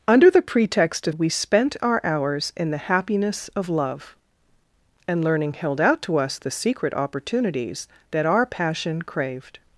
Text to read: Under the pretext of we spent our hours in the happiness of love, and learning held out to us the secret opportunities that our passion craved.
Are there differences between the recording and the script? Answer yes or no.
no